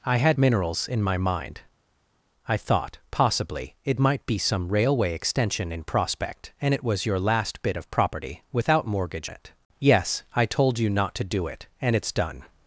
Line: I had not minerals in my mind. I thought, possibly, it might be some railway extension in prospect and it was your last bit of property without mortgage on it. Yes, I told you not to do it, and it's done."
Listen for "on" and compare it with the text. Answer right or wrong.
wrong